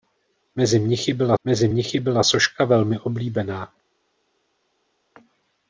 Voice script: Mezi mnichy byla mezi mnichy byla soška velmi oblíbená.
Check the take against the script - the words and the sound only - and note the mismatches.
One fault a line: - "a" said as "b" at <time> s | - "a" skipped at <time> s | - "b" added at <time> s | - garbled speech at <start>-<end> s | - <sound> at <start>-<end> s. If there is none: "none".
none